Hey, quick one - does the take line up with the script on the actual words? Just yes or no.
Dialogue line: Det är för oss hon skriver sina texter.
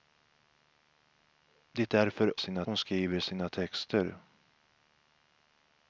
no